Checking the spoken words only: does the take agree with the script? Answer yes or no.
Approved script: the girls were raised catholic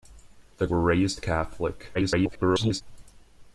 no